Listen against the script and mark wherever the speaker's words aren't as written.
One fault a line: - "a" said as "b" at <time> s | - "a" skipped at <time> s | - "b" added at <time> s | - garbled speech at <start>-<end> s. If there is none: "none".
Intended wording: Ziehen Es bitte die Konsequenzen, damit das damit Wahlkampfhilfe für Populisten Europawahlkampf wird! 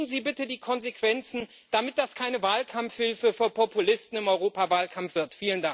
- "Es" said as "Sie" at 0.1 s
- "damit" said as "keine" at 2.1 s
- "im" added at 4.2 s